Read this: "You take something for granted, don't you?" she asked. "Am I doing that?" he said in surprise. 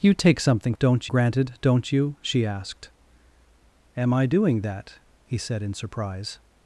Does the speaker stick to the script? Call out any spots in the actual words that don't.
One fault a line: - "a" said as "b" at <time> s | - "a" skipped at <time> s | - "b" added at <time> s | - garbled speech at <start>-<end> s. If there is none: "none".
- "for" said as "don't" at 0.8 s